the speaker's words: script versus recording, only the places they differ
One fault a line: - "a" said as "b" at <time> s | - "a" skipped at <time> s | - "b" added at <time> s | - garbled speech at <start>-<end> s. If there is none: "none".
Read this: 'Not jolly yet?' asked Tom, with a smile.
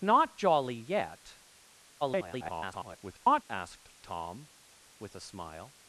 - garbled speech at 2.0-3.4 s